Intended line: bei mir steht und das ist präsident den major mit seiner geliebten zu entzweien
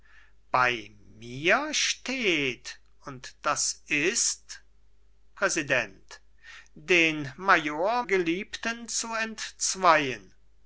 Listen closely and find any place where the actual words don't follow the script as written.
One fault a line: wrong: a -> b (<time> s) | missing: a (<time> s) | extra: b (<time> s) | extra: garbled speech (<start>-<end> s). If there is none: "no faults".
missing: mit seiner (8.0 s)